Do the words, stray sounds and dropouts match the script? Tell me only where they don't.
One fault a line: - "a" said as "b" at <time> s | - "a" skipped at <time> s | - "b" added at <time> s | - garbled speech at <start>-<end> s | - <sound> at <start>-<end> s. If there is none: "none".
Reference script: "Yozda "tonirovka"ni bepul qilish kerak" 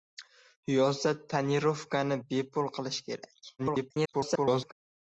- garbled speech at 3.6-4.7 s